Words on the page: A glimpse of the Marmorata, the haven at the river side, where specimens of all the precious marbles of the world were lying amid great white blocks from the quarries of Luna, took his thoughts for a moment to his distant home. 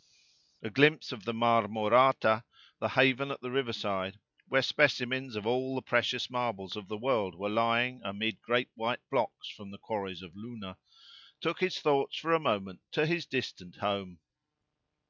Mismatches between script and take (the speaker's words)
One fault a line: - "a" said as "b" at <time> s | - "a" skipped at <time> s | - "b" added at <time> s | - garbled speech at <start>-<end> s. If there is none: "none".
none